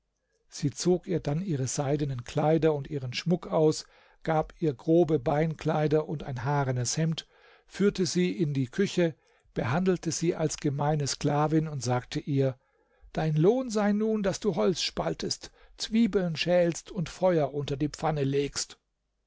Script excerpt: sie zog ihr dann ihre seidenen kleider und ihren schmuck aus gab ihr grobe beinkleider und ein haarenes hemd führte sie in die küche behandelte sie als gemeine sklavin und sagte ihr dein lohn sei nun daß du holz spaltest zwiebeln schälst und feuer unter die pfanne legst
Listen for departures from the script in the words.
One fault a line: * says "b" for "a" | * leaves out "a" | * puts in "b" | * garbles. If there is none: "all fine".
all fine